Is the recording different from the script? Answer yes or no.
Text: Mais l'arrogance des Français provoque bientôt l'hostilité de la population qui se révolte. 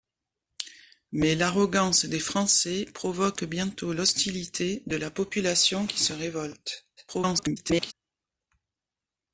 yes